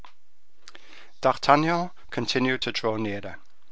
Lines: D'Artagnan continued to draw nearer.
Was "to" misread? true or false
false